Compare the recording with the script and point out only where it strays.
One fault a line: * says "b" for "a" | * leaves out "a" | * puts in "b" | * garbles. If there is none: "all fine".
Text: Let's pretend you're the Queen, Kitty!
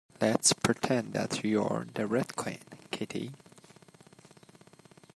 * puts in "that"
* puts in "Red"